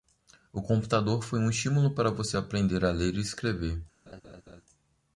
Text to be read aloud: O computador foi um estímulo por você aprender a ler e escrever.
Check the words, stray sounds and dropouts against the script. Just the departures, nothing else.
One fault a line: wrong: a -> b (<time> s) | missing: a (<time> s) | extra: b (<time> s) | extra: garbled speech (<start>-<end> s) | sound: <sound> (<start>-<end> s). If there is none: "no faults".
wrong: por -> para (1.9 s)
sound: laugh (4.1-4.6 s)